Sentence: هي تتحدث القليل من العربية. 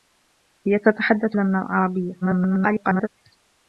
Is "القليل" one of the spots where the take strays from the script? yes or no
yes